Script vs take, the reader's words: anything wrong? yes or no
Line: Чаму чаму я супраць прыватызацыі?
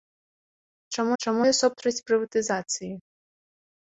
no